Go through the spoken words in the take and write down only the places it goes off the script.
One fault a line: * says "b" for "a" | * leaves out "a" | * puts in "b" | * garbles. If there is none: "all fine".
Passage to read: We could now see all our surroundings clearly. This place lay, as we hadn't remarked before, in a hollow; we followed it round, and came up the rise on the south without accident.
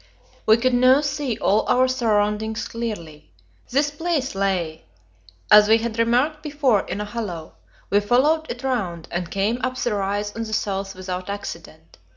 * says "had" for "hadn't"